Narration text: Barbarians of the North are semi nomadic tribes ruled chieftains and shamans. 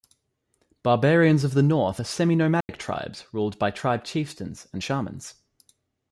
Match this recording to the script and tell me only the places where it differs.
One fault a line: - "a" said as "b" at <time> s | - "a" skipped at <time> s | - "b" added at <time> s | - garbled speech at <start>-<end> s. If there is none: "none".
- "by tribe" added at 3.6 s